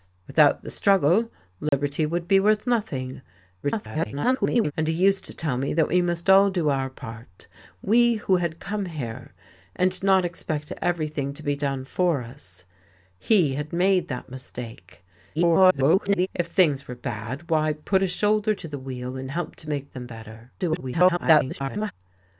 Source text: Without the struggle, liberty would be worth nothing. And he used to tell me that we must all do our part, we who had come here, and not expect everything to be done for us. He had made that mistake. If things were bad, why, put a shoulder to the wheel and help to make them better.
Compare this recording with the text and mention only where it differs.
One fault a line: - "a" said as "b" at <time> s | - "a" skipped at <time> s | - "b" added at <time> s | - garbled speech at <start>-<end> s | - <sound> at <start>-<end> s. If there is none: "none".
- dropout at 1.7-1.7 s
- garbled speech at 3.6-4.7 s
- garbled speech at 15.4-16.3 s
- garbled speech at 20.6-21.9 s